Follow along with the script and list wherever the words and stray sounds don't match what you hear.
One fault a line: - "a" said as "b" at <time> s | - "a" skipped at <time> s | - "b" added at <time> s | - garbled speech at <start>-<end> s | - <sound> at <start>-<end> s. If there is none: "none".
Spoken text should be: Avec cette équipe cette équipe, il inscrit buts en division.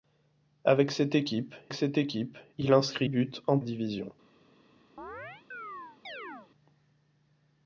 - chirp at 5.0-6.5 s